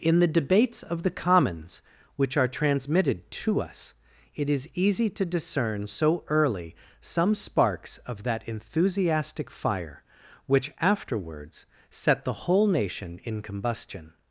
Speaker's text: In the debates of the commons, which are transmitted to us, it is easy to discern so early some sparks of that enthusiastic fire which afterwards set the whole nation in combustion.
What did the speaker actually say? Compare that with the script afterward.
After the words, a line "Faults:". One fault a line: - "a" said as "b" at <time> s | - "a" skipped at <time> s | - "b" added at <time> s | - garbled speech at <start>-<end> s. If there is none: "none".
In the debates of the commons, which are transmitted to us, it is easy to discern so early some sparks of that enthusiastic fire which afterwards set the whole nation in combustion.
Faults:
none